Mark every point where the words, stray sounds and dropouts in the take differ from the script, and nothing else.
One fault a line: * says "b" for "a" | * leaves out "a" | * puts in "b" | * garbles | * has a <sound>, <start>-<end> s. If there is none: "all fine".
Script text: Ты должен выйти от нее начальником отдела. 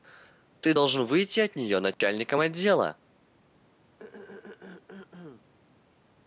* has a dropout, 1.9-2.0 s
* has a throat clearing, 4.0-5.5 s